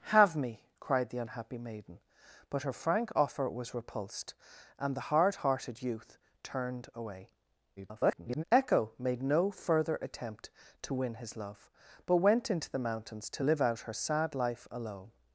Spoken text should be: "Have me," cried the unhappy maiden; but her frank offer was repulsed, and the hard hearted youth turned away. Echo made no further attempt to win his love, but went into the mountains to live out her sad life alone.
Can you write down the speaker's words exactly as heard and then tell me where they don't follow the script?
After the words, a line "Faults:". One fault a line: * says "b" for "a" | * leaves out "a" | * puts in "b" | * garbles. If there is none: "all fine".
"Have me," cried the unhappy maiden; but her frank offer was repulsed, and the hard hearted youth turned away. [garbled] Echo made no further attempt to win his love, but went into the mountains to live out her sad life alone.
Faults:
* garbles